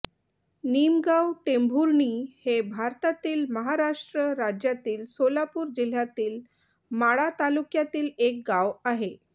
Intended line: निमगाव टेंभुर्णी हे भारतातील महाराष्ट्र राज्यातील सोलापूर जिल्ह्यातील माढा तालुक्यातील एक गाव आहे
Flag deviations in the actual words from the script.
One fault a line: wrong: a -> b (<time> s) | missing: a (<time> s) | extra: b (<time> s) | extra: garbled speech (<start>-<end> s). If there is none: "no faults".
no faults